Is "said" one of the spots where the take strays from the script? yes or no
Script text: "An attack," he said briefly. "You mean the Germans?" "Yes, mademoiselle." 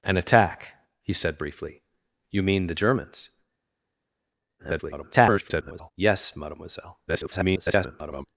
no